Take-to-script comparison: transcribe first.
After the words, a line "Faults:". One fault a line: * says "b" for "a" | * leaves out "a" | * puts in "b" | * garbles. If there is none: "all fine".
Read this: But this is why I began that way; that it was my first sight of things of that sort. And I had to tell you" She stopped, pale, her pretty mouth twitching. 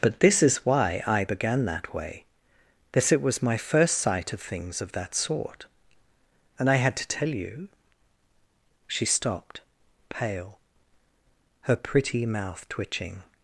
But this is why I began that way; that it was my first sight of things of that sort. And I had to tell you" She stopped, pale, her pretty mouth twitching.
Faults:
all fine